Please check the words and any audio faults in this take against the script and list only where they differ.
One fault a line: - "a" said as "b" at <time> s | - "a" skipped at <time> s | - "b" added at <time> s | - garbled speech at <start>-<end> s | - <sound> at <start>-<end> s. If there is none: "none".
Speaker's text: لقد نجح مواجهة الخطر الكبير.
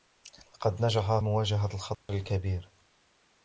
- dropout at 1.9-2.1 s